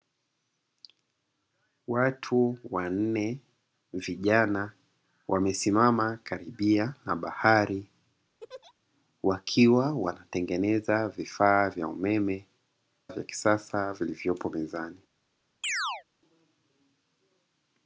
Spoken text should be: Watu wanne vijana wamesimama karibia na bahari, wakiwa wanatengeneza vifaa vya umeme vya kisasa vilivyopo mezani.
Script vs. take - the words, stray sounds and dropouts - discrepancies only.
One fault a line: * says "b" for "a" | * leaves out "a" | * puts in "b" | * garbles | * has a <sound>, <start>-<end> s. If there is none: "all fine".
* has a laugh, 8.4-8.7 s
* has a chirp, 15.6-16.0 s